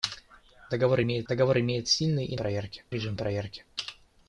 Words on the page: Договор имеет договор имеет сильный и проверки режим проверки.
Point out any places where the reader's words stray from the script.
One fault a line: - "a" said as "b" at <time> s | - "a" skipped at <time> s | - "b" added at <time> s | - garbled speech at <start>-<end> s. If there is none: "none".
none